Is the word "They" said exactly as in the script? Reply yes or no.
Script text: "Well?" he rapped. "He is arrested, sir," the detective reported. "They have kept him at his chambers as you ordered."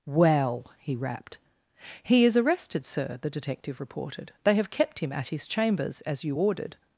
yes